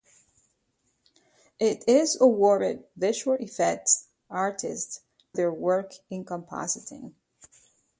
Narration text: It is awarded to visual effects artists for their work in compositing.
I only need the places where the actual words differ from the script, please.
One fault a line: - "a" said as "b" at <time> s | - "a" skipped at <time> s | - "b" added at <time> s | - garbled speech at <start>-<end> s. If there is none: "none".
- "to" skipped at 2.9 s
- "for" skipped at 5.0 s